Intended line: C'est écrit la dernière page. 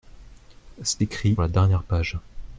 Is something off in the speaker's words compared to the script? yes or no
no